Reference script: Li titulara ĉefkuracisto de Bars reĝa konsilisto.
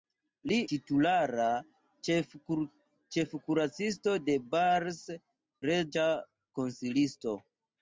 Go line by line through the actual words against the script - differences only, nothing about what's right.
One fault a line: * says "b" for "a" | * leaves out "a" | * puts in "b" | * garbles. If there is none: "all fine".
all fine